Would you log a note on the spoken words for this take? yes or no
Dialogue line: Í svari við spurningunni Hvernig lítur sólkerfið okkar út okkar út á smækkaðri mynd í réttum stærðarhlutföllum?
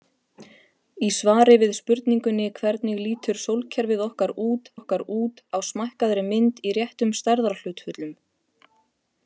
no